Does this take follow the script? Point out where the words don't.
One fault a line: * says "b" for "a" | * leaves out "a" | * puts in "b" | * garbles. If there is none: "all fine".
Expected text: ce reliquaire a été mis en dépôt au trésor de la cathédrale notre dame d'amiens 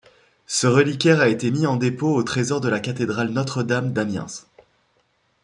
all fine